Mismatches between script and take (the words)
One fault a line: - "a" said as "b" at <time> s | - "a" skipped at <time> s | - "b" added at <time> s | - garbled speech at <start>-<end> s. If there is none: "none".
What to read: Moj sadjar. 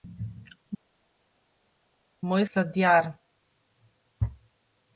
none